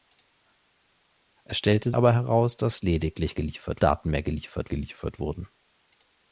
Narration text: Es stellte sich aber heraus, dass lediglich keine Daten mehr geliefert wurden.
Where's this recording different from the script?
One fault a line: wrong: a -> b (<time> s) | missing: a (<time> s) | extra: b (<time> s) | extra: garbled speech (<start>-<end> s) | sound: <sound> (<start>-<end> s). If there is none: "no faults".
missing: sich (1.9 s)
wrong: keine -> geliefert (3.3 s)
extra: geliefert (4.7 s)